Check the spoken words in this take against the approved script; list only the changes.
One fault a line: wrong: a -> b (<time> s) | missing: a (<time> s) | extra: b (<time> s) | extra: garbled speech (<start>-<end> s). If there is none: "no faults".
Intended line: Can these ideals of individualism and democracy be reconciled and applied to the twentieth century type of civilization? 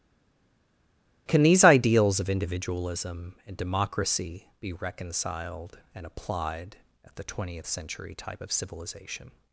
wrong: to -> at (7.0 s)